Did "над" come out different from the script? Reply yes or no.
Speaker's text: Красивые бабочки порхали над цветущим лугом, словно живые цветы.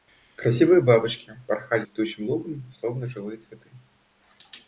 yes